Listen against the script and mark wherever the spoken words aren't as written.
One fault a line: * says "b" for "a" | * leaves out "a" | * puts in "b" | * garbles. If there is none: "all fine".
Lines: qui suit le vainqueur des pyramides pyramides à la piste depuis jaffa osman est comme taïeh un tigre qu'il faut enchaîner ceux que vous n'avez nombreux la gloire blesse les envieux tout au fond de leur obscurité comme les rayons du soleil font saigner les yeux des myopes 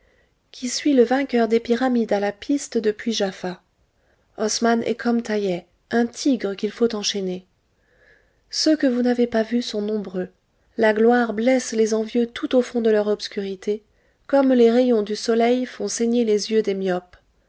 * leaves out "pyramides"
* puts in "pas vus sont"